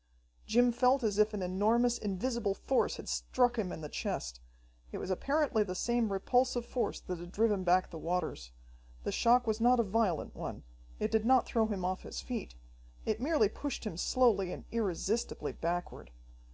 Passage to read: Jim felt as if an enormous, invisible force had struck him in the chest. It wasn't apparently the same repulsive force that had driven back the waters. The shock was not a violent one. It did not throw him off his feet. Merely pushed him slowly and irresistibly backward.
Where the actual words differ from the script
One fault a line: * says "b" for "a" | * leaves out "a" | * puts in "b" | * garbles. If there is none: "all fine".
* says "was" for "wasn't"
* puts in "It"